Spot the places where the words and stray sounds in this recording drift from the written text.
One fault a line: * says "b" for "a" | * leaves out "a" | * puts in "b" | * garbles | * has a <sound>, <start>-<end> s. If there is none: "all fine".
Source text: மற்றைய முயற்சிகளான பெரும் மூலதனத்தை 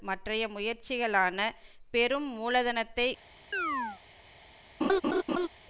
* has a chirp, 3.5-4.0 s
* has a laugh, 4.8-5.5 s